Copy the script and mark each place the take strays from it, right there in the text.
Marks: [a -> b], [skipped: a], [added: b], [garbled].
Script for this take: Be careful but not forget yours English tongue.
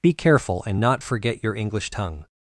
Be careful [but -> and] not forget [yours -> your] English tongue.